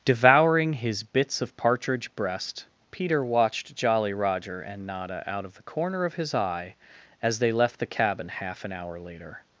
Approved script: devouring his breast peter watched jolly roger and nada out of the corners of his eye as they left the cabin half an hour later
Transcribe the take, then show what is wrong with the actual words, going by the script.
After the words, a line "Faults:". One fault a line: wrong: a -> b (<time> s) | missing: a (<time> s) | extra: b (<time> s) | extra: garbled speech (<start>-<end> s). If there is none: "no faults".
devouring his bits of partridge breast peter watched jolly roger and nada out of the corner of his eye as they left the cabin half an hour later
Faults:
extra: bits of partridge (1.0 s)
wrong: corners -> corner (5.6 s)